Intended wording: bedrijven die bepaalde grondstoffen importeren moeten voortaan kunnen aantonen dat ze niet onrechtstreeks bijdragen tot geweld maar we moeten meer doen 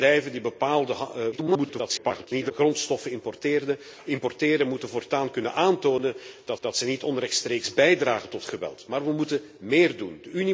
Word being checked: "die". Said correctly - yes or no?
yes